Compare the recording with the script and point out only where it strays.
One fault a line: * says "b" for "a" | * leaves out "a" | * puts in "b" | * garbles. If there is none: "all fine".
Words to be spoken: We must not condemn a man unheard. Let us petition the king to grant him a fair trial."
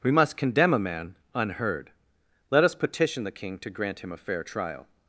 * leaves out "not"